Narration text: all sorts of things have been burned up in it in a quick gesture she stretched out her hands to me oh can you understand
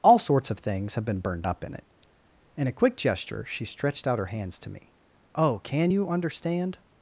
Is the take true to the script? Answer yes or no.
yes